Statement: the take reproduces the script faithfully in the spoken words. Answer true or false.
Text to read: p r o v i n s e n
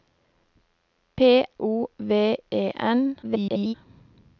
false